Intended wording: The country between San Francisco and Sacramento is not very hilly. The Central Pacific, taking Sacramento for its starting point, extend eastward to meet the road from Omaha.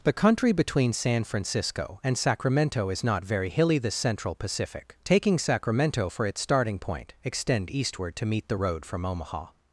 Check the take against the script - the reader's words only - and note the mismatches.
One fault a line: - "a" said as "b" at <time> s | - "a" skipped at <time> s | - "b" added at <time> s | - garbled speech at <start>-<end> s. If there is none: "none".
none